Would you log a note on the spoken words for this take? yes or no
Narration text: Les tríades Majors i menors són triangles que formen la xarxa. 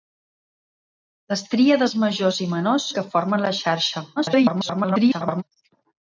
yes